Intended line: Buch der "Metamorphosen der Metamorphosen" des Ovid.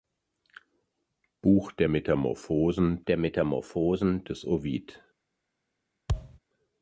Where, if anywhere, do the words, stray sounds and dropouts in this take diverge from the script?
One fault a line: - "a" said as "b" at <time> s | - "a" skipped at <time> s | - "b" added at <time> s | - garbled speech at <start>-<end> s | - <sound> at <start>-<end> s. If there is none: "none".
- thud at 6.1-6.4 s